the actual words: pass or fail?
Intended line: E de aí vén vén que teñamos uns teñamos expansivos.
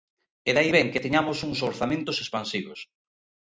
fail